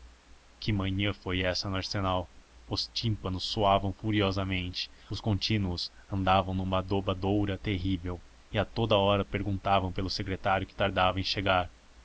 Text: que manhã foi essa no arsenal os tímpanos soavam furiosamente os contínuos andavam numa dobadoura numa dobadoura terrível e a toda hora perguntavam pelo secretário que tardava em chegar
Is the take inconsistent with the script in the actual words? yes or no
yes